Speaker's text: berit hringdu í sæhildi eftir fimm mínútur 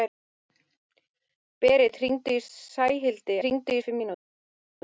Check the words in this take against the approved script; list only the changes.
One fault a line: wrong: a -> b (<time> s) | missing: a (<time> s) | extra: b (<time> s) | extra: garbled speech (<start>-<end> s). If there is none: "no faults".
wrong: eftir -> hringdu (3.4 s)